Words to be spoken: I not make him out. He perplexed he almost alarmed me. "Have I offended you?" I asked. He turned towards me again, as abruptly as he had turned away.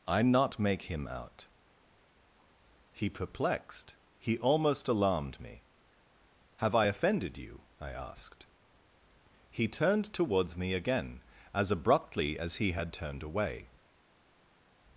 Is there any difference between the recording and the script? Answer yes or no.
no